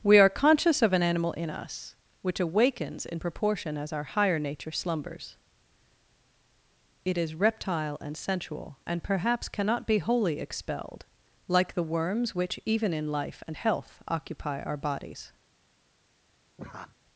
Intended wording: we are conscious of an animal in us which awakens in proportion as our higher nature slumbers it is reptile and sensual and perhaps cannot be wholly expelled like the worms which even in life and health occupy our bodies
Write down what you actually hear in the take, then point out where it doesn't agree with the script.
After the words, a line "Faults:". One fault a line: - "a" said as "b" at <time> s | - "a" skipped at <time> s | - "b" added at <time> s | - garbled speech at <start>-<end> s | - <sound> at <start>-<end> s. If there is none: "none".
we are conscious of an animal in us which awakens in proportion as our higher nature slumbers it is reptile and sensual and perhaps cannot be wholly expelled like the worms which even in life and health occupy our bodies
Faults:
- laugh at 16.6-17.0 s